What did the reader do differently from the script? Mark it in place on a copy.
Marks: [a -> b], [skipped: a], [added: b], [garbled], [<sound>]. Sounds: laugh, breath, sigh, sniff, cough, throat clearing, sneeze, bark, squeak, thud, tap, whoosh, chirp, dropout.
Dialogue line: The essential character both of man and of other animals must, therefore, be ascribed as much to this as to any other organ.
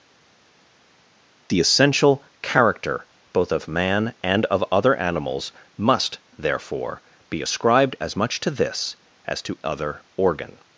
The essential character both of man and of other animals must, therefore, be ascribed as much to this as to [skipped: any] other organ.